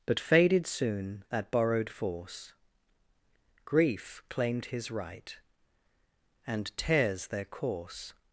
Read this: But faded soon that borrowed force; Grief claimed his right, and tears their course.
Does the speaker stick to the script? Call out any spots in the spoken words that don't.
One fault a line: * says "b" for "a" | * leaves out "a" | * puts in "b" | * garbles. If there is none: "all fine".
all fine